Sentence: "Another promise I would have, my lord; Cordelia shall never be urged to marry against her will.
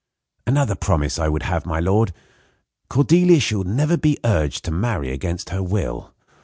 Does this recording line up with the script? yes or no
yes